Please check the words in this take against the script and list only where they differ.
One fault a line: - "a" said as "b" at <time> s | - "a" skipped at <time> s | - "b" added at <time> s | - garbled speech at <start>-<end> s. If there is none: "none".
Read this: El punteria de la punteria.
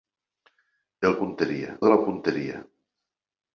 none